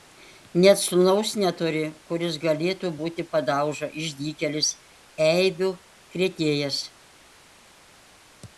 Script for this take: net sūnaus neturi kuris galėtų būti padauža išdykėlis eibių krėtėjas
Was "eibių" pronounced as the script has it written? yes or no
yes